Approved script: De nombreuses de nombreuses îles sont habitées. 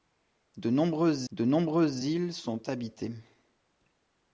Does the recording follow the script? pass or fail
pass